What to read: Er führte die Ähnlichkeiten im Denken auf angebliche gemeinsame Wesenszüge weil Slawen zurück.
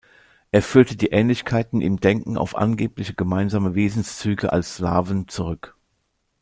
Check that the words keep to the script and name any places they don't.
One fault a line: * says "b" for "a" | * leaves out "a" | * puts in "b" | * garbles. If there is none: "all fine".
* says "als" for "weil"